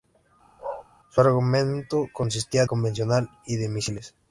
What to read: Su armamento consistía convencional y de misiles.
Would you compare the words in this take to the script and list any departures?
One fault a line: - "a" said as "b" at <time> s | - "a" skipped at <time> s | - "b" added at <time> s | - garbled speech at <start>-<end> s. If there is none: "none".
none